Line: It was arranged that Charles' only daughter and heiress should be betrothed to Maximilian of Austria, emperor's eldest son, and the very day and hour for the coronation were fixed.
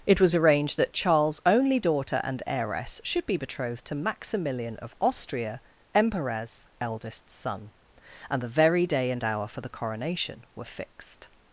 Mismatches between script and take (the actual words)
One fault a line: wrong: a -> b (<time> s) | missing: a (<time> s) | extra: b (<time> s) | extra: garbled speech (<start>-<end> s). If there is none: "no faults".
no faults